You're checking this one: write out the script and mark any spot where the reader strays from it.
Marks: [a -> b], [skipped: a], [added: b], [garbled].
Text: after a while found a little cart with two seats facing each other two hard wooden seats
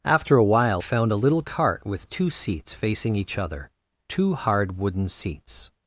after a while found a little cart with two seats facing each other two hard wooden seats